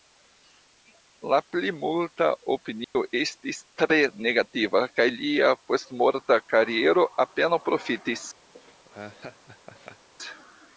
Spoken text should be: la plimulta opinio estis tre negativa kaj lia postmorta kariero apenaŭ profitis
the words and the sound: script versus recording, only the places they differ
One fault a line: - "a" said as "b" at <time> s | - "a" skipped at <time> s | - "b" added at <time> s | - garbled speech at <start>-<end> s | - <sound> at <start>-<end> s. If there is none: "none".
- dropout at 2.8-3.0 s
- laugh at 8.5-10.1 s